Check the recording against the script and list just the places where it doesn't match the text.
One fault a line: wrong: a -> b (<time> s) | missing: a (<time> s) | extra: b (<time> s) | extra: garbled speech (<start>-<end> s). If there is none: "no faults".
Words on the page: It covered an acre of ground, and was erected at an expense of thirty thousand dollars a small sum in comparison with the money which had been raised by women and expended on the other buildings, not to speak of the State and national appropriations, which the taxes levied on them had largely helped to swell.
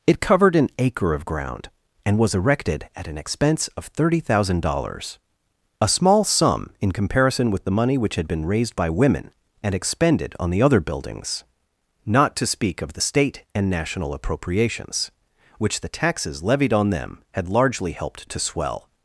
no faults